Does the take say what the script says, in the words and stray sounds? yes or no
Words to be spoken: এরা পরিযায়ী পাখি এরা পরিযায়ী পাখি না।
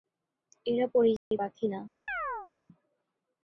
no